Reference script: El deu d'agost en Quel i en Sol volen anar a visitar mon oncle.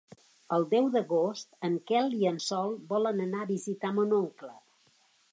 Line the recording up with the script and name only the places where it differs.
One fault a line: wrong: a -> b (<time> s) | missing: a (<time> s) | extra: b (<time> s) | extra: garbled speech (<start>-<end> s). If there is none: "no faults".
no faults